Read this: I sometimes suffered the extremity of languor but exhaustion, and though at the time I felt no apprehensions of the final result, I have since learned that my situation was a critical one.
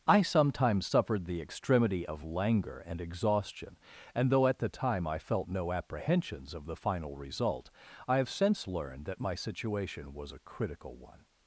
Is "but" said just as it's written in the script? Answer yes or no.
no